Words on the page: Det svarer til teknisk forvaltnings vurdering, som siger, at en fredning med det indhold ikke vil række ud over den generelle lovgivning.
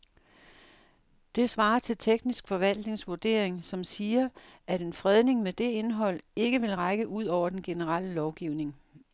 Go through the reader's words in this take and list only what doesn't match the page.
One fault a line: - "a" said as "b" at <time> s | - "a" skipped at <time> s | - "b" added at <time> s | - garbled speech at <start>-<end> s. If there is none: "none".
none